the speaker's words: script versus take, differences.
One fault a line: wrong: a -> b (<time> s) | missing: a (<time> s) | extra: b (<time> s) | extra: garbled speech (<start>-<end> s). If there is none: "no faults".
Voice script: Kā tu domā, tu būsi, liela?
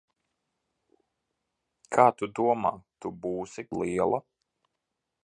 no faults